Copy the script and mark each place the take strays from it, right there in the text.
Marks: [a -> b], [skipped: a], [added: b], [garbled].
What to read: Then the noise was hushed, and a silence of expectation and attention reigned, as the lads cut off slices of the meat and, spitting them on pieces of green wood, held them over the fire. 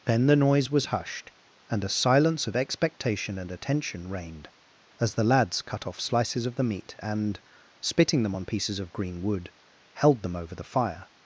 Then the noise was hushed, and a silence of expectation and attention reigned, as the lads cut off slices of the meat and, spitting them on pieces of green wood, held them over the fire.